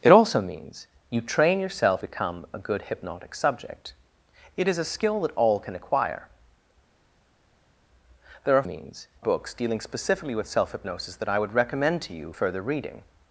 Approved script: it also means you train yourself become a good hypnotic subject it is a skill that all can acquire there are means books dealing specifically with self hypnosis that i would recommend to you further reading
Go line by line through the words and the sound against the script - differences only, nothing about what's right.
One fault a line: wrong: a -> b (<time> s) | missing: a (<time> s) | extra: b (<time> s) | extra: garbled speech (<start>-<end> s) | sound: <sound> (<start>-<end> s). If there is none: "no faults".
no faults